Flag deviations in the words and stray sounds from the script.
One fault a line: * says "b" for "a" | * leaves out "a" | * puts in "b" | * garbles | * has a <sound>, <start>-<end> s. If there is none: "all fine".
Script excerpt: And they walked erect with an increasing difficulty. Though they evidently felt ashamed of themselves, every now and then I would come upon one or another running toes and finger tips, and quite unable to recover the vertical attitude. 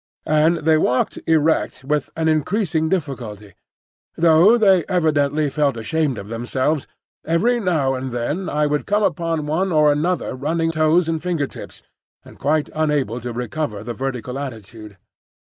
all fine